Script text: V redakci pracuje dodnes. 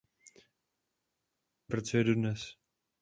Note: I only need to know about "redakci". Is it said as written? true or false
false